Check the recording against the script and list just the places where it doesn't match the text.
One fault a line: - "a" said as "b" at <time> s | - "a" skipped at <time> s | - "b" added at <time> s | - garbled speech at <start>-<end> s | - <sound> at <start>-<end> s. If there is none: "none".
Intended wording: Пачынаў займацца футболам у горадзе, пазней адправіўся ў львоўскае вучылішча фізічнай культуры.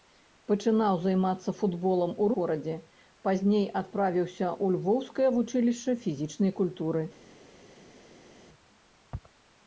none